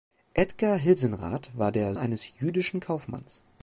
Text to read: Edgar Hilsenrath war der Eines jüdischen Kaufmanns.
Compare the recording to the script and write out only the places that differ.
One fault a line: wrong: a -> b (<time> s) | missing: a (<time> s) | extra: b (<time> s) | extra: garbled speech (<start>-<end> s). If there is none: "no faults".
no faults